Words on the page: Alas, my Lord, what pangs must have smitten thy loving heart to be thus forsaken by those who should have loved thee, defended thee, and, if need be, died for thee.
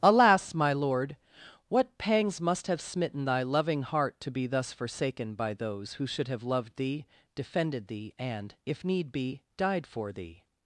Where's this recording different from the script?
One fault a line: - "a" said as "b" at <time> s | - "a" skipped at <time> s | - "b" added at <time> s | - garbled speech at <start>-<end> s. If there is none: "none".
none